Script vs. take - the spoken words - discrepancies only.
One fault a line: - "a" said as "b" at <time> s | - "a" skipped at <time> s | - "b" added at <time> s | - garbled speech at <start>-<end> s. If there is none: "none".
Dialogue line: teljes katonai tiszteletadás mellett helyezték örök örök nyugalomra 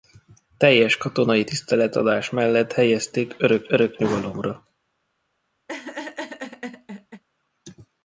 none